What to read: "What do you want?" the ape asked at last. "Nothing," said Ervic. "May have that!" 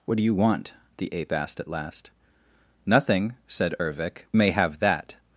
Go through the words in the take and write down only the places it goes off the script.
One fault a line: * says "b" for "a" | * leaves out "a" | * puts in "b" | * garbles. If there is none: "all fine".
all fine